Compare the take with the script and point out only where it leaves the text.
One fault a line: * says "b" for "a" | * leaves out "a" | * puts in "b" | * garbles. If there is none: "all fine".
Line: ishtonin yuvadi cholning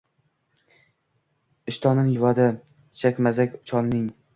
* puts in "chakmazak"